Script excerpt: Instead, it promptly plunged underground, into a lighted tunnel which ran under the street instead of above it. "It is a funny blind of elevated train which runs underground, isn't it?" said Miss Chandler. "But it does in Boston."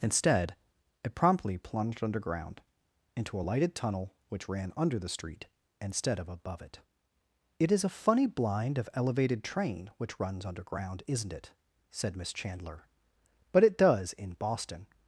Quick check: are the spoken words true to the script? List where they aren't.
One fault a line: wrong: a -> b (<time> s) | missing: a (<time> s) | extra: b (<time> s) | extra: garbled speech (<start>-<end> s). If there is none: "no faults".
no faults